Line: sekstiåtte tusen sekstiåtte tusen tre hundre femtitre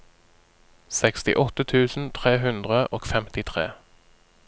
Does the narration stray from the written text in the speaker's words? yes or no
yes